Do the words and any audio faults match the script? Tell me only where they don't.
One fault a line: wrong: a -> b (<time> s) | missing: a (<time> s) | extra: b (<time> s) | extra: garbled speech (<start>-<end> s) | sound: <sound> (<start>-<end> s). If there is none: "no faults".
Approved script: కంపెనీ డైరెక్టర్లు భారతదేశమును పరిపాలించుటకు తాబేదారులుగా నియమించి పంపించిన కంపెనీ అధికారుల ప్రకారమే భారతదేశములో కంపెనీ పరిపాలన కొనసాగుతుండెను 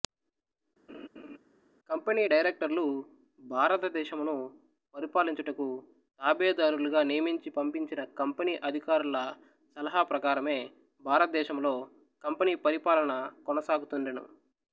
sound: laugh (0.9-1.4 s)
extra: సలహా (9.8 s)